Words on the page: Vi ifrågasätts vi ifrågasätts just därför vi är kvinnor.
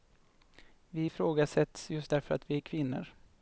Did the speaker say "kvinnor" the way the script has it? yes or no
yes